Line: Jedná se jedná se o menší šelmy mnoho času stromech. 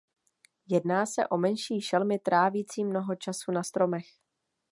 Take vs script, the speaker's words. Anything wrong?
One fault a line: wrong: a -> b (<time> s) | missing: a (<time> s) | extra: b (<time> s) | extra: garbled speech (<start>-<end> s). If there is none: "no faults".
missing: jedná se (1.3 s)
extra: trávicí (2.2 s)
extra: na (3.5 s)